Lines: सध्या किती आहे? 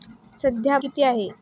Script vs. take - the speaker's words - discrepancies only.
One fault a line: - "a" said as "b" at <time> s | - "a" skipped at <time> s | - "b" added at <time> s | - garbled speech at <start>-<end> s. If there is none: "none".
none